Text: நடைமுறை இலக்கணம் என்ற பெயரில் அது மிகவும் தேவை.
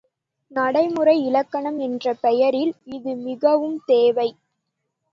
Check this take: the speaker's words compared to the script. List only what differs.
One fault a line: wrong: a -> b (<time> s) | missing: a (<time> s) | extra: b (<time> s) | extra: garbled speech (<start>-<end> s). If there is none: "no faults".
wrong: அது -> இது (2.9 s)